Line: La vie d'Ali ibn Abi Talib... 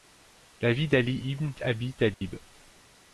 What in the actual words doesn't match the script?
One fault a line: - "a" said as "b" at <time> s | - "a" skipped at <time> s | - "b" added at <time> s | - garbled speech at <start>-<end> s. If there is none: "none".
none